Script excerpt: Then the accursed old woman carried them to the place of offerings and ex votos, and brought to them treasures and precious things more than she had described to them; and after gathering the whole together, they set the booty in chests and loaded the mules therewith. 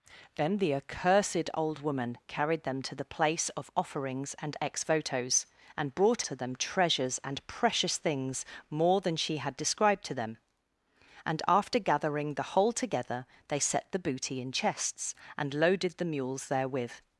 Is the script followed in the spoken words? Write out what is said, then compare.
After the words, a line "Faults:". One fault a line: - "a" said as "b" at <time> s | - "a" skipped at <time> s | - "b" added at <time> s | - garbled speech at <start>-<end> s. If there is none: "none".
Then the accursed old woman carried them to the place of offerings and ex votos, and brought to them treasures and precious things more than she had described to them; and after gathering the whole together, they set the booty in chests and loaded the mules therewith.
Faults:
none